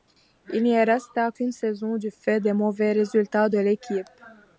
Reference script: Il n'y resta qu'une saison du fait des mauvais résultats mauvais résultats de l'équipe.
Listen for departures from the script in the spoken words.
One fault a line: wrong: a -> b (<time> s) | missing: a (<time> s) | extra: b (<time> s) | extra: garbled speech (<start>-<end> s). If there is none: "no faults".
missing: mauvais résultats (3.5 s)